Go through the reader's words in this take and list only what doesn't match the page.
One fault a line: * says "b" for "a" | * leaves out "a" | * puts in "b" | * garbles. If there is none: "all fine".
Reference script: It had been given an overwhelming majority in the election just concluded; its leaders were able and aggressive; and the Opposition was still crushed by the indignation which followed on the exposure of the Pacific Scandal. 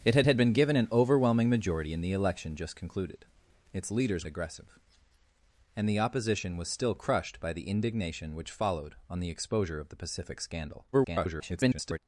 * puts in "had"
* leaves out "were able and"
* garbles